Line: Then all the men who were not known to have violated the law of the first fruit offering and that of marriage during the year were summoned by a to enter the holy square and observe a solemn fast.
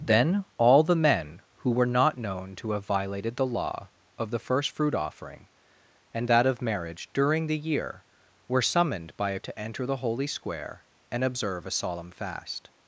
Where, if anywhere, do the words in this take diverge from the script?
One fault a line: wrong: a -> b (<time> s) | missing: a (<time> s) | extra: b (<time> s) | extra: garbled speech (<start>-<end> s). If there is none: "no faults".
no faults